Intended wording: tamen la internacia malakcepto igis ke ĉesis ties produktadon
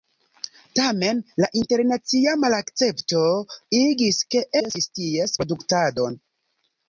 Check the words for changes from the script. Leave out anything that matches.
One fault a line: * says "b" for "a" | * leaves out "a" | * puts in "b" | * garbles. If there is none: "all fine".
all fine